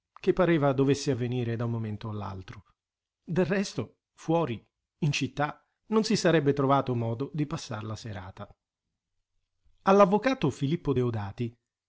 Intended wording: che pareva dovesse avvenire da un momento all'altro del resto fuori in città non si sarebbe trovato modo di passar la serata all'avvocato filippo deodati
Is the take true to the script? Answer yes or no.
yes